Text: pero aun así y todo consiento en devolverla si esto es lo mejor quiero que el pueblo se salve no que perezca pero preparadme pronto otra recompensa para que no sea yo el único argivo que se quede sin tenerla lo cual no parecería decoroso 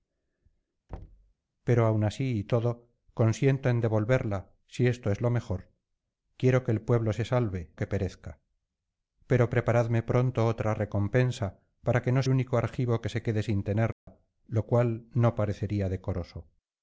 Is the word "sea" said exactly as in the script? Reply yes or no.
no